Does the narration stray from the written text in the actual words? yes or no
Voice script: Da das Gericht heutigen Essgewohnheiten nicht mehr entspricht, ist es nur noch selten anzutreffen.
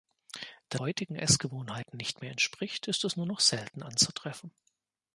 yes